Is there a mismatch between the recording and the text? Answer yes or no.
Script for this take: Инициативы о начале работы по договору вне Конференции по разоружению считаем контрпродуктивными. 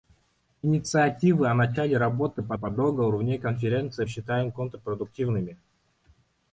yes